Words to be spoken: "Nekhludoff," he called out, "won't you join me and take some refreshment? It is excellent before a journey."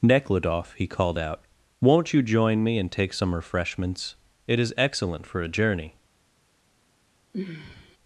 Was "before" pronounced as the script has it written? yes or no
no